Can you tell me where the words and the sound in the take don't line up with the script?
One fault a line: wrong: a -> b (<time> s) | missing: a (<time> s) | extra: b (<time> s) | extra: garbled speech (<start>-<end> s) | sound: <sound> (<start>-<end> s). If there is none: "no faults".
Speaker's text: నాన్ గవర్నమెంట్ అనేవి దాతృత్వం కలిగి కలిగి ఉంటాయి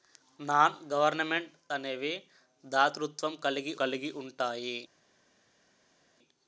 no faults